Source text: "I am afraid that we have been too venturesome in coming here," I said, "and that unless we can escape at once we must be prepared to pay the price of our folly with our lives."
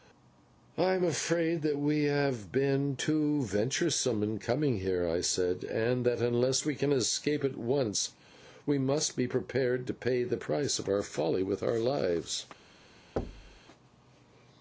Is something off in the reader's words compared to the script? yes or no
no